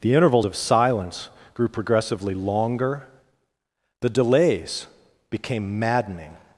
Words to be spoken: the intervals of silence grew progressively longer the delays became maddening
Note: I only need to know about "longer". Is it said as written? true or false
true